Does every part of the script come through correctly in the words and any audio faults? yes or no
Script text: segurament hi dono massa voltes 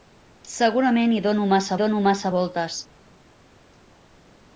no